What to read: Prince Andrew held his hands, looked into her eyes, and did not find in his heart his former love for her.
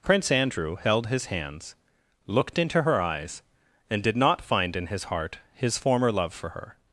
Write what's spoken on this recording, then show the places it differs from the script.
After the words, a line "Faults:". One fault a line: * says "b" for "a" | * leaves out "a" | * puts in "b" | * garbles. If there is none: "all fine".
Prince Andrew held his hands, looked into her eyes, and did not find in his heart his former love for her.
Faults:
all fine